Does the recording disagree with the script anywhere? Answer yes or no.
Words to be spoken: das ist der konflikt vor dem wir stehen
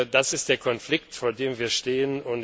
no